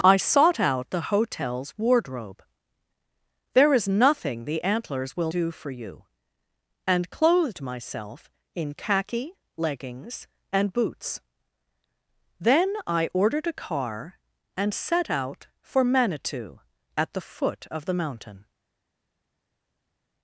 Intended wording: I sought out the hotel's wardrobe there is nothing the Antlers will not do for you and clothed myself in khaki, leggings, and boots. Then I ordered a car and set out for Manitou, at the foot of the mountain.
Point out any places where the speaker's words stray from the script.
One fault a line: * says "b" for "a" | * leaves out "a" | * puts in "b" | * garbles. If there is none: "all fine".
* leaves out "not"